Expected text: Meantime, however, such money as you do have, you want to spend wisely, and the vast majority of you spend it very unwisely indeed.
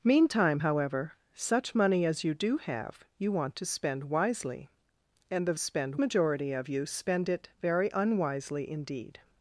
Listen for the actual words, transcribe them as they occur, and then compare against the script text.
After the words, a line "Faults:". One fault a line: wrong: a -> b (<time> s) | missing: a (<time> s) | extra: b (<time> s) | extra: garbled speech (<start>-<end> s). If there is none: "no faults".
Meantime, however, such money as you do have, you want to spend wisely, and the spend majority of you spend it very unwisely indeed.
Faults:
wrong: vast -> spend (5.6 s)